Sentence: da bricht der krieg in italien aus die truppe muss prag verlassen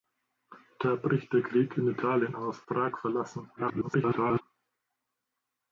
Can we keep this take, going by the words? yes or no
no